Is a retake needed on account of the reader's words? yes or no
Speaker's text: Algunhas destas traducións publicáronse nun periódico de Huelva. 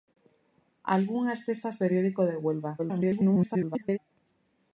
yes